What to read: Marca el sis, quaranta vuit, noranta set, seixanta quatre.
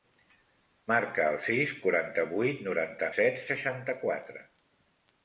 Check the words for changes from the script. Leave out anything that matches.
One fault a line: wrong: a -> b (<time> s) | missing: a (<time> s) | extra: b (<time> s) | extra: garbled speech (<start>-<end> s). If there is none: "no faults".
no faults